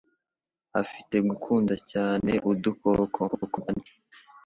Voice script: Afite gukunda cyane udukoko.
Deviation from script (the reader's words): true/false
true